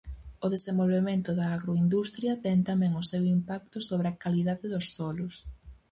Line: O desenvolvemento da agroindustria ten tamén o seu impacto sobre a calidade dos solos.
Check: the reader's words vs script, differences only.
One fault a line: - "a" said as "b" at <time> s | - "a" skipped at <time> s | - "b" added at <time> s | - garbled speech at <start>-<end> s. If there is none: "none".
none